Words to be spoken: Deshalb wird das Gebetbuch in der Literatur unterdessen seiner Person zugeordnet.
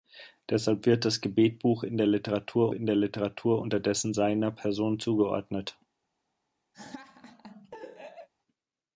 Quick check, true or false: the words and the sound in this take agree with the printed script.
false